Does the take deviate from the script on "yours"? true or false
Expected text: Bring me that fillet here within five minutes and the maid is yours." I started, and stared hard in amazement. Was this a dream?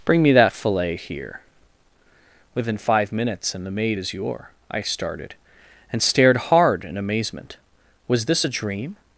true